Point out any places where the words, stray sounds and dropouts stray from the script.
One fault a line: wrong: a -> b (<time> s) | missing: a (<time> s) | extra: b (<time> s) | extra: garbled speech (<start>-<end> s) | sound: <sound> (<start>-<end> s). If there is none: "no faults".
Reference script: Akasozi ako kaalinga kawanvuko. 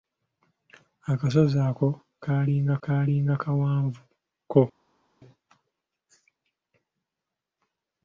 extra: kaalinga (2.8 s)